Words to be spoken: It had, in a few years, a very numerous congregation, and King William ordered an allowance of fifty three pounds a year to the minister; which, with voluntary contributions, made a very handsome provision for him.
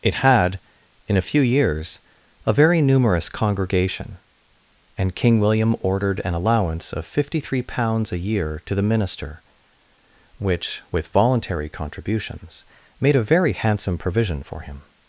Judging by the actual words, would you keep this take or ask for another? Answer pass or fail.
pass